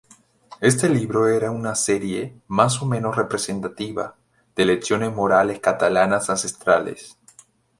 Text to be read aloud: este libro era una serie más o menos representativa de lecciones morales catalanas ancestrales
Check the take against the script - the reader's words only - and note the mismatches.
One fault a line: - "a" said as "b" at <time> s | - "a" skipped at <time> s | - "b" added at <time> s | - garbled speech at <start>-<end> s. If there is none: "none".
none